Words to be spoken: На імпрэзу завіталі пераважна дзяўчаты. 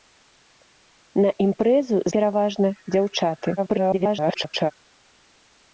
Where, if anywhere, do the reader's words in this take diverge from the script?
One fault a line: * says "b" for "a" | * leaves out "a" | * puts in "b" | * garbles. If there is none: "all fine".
* leaves out "завіталі"
* garbles